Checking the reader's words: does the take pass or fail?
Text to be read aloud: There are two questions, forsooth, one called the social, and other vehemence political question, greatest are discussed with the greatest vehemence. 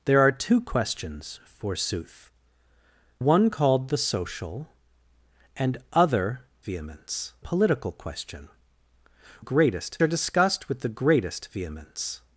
pass